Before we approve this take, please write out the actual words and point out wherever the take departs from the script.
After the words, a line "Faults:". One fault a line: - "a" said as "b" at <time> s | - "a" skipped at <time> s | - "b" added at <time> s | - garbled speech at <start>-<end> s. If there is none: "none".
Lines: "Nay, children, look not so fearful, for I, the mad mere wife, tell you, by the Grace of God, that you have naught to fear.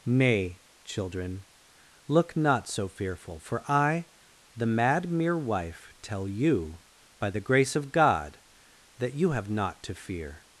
"Nay, children, look not so fearful, for I, the mad mere wife, tell you, by the Grace of God, that you have naught to fear.
Faults:
none